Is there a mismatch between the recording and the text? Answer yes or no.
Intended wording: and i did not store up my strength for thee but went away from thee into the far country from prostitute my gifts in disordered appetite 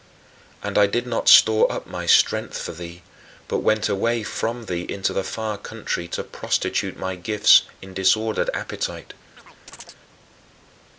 yes